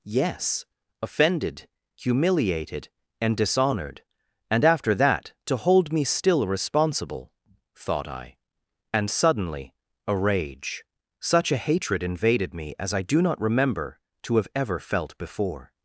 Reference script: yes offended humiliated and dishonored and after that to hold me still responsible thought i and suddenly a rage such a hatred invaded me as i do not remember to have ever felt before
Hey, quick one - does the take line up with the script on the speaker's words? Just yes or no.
yes